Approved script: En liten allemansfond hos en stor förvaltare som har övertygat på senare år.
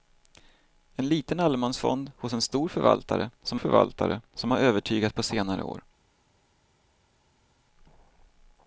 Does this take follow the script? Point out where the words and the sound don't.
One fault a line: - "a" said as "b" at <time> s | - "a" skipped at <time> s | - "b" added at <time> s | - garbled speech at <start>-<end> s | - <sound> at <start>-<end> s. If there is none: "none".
- "förvaltare som" added at 3.5 s